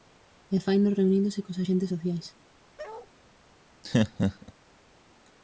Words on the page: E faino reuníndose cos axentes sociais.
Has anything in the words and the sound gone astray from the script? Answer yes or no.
yes